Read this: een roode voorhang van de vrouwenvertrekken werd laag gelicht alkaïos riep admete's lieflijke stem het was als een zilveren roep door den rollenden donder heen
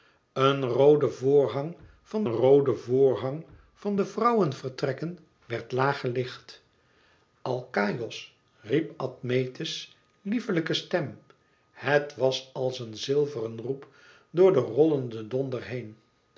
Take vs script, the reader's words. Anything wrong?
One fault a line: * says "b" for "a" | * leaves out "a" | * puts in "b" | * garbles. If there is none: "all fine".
* puts in "roode voorhang van"